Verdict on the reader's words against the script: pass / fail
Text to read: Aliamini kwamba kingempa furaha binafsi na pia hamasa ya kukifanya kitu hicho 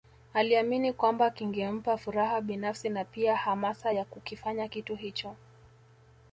pass